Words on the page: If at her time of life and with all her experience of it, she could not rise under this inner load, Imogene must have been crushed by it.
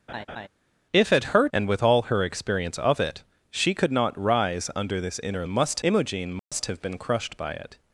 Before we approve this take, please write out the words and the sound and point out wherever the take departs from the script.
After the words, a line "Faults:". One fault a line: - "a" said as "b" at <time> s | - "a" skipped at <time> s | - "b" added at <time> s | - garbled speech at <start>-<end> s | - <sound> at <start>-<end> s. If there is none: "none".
If at her and with all her experience of it, she could not rise under this inner must, Imogene must have been crushed by it.
Faults:
- laugh at 0.1-0.5 s
- "time of life" skipped at 1.5 s
- "load" said as "must" at 5.5 s
- dropout at 6.4-6.5 s